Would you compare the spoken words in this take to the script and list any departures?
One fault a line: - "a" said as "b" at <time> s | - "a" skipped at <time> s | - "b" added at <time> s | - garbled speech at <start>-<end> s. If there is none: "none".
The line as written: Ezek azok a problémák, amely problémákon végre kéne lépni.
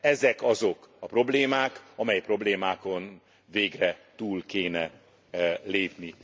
- "túl" added at 4.2 s